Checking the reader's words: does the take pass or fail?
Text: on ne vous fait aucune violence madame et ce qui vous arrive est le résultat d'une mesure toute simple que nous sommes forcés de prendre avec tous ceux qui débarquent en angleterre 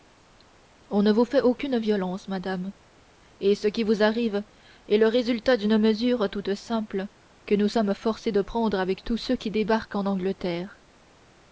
pass